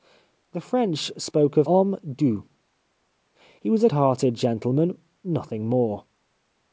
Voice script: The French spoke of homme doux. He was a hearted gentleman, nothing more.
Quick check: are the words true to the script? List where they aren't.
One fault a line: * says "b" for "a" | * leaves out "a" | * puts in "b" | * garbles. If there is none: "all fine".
all fine